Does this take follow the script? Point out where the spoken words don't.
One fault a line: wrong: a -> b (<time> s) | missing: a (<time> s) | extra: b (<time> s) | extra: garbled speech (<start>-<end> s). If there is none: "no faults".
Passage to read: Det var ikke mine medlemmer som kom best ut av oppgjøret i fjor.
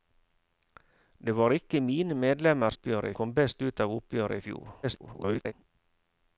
wrong: som -> oppgjøret (2.7 s)
extra: garbled speech (4.8-5.5 s)